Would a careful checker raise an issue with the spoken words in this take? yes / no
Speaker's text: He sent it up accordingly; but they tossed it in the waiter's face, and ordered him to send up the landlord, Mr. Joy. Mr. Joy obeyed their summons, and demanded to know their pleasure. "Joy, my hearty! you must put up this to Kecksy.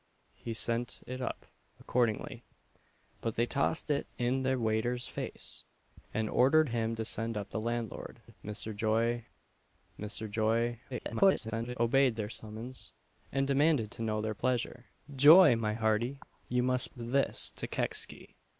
yes